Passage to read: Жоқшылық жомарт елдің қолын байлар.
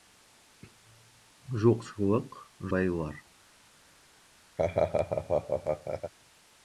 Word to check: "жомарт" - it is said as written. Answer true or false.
false